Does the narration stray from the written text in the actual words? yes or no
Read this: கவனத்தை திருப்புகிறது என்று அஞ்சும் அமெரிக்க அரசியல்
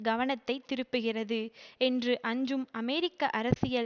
no